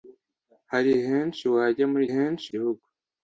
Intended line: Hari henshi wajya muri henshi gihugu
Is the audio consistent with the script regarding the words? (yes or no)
yes